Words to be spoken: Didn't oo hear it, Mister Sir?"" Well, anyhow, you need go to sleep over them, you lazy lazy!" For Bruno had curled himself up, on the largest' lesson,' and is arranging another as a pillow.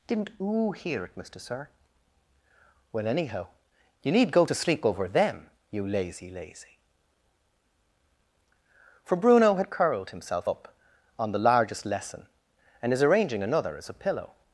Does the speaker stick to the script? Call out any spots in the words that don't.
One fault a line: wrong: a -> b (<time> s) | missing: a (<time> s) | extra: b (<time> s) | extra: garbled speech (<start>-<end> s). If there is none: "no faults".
no faults